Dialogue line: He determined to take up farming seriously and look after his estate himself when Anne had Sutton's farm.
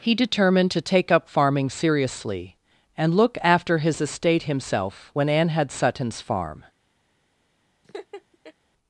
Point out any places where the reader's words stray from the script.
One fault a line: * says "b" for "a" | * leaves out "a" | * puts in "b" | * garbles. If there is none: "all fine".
all fine